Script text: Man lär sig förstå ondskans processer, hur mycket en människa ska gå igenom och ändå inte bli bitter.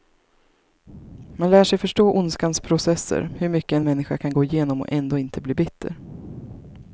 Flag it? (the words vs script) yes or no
yes